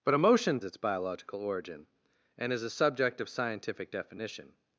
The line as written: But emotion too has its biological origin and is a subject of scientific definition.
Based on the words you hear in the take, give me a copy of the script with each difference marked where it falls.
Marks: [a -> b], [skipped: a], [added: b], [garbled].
But emotion [skipped: too has] its biological origin and is a subject of scientific definition.